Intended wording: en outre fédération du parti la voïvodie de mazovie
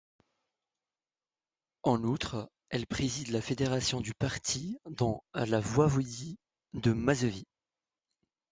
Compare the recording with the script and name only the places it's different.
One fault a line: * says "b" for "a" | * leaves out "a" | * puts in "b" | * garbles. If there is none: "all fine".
* puts in "elle préside la"
* puts in "dans"